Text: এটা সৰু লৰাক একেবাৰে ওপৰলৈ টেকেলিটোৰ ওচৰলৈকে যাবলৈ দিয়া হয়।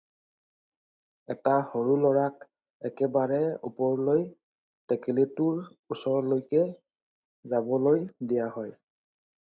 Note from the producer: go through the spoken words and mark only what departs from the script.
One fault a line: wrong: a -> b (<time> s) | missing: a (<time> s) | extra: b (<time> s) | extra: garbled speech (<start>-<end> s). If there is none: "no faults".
no faults